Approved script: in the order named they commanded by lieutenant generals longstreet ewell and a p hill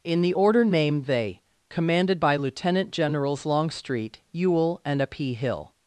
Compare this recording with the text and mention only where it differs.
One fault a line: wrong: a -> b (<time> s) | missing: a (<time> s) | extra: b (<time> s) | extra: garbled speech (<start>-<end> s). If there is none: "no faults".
no faults